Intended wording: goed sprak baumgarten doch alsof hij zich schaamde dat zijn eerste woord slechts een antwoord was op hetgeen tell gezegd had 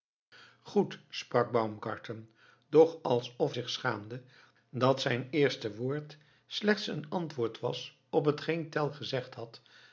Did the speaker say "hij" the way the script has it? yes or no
no